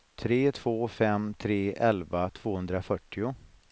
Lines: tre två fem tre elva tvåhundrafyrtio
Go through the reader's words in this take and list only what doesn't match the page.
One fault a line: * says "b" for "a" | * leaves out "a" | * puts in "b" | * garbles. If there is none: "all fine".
all fine